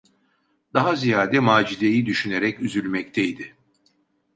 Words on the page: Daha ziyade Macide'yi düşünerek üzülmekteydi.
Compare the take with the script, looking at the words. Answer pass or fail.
pass